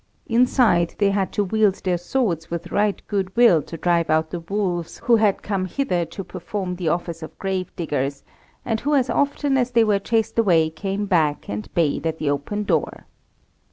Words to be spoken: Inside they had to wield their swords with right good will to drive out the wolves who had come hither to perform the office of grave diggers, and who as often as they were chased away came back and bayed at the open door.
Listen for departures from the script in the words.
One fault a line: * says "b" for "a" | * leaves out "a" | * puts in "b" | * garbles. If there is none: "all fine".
all fine